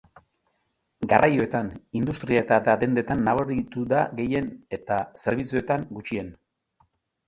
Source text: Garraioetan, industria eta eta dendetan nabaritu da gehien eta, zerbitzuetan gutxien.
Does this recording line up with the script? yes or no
yes